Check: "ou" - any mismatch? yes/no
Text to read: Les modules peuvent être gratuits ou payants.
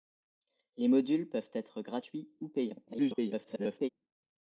no